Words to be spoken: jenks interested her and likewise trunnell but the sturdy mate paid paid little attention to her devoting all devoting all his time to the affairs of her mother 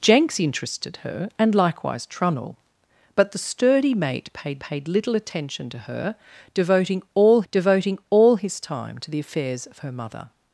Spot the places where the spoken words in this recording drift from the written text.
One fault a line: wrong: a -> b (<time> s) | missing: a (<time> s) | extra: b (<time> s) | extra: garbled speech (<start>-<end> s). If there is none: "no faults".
no faults